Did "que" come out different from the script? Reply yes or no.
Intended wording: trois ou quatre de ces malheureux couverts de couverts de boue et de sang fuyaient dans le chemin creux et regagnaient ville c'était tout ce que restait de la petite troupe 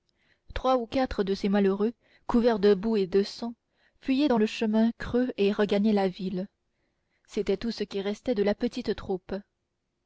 yes